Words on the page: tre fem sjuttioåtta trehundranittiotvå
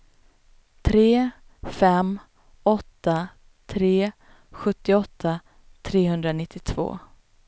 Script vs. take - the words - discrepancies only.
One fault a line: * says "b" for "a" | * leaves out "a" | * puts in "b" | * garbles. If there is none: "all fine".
* puts in "åtta tre"